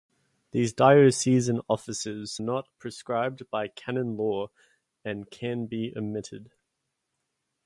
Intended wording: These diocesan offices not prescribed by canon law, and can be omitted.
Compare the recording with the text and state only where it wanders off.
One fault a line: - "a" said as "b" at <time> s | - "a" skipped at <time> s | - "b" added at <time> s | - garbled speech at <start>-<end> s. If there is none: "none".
none